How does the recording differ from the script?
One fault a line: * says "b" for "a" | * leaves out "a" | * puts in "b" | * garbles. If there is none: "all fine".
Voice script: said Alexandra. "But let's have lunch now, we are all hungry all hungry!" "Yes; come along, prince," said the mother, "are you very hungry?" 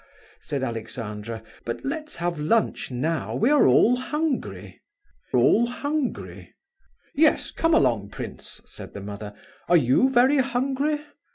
all fine